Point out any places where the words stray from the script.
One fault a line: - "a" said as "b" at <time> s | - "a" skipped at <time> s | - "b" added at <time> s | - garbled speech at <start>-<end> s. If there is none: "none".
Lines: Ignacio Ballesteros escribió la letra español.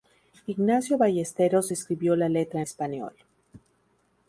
none